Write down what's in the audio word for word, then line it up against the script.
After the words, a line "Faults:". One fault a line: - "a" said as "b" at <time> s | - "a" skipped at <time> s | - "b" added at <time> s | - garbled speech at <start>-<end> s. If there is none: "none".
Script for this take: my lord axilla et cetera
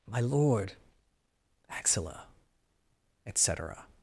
my lord axilla et cetera
Faults:
none